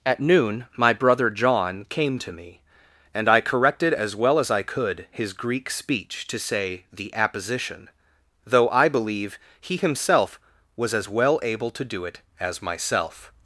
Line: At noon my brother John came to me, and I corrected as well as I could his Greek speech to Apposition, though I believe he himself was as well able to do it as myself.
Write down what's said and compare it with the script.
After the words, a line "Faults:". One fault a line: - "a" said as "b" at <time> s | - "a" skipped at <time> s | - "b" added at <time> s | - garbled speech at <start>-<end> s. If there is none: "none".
At noon my brother John came to me, and I corrected as well as I could his Greek speech to say the Apposition, though I believe he himself was as well able to do it as myself.
Faults:
- "say the" added at 6.4 s